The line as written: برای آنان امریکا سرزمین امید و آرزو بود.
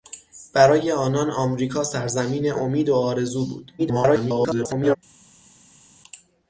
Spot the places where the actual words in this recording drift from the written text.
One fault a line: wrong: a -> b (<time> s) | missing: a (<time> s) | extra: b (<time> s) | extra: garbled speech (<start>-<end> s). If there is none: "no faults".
extra: garbled speech (3.8-5.0 s)